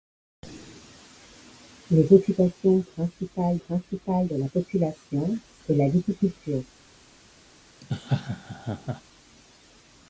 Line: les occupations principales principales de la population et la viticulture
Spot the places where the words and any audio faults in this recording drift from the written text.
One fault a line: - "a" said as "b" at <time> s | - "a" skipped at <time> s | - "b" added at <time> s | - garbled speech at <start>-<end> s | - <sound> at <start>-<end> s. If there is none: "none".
- laugh at 7.8-9.0 s